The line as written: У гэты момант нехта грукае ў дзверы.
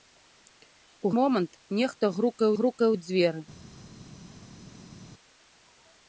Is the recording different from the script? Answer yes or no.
yes